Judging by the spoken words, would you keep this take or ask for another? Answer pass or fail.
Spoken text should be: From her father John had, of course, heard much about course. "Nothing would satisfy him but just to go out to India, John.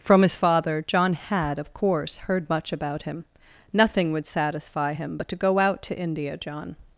fail